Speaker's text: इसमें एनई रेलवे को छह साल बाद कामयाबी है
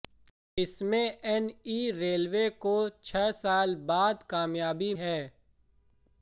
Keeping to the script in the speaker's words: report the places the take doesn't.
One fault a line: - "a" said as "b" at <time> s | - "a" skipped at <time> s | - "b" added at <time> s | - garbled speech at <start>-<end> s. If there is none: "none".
none